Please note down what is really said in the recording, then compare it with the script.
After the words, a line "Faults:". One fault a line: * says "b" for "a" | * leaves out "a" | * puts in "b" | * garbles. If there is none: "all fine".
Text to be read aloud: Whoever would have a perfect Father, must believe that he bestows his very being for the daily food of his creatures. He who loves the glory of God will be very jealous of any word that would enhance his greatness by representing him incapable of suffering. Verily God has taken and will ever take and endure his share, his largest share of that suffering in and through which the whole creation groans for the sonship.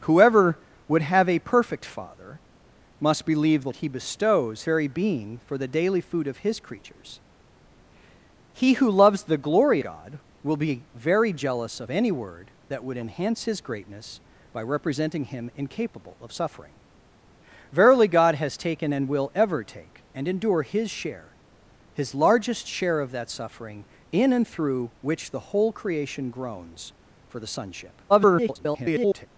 Whoever would have a perfect Father, must believe that he bestows very being for the daily food of his creatures. He who loves the glory God will be very jealous of any word that would enhance his greatness by representing him incapable of suffering. Verily God has taken and will ever take and endure his share, his largest share of that suffering in and through which the whole creation groans for the sonship. [garbled]
Faults:
* leaves out "his"
* leaves out "of"
* garbles